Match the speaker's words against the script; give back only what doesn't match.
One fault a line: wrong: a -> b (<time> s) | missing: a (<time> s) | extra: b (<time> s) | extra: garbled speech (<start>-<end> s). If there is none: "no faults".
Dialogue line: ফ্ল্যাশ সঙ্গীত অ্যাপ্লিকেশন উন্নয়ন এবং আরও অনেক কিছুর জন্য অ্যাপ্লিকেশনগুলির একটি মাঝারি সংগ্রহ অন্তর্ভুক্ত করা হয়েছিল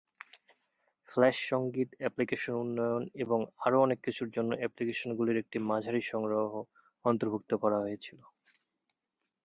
no faults